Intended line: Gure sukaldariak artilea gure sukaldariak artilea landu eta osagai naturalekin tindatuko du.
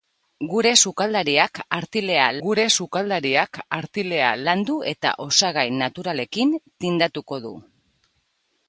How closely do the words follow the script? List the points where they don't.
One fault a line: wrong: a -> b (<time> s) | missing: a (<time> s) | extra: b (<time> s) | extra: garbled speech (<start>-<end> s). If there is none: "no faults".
no faults